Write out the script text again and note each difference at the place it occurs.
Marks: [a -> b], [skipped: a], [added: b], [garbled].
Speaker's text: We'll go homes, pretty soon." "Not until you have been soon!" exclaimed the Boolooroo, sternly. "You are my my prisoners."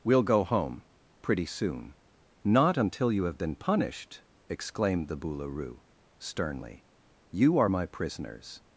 We'll go [homes, -> home] pretty soon." "Not until you have been [soon!" -> punished] exclaimed the Boolooroo, sternly. "You are my [skipped: my] prisoners."